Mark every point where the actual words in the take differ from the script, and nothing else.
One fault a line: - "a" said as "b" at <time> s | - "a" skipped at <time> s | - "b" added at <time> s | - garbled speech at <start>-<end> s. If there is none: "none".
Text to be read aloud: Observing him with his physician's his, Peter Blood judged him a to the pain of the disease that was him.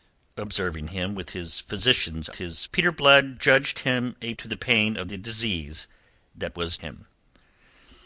none